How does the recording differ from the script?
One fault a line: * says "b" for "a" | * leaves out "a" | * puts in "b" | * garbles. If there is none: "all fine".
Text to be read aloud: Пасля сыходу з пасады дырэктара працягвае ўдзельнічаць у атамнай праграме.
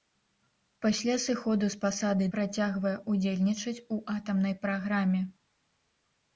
* leaves out "дырэктара"